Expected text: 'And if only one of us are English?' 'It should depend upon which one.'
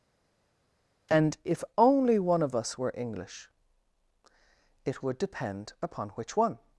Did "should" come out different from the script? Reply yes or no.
yes